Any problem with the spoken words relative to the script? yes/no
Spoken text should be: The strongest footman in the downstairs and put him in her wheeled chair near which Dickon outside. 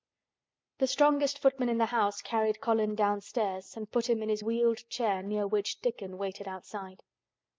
yes